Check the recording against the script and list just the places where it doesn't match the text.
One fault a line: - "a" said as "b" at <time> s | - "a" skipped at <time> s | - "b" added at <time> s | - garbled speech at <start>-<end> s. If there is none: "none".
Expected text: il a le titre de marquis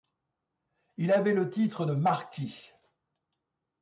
- "a" said as "avait" at 1.1 s